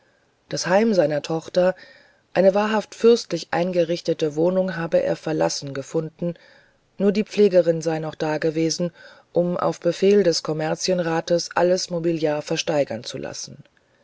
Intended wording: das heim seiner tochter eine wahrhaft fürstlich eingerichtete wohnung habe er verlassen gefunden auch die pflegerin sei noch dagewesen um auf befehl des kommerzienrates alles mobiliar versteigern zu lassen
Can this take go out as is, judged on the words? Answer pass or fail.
fail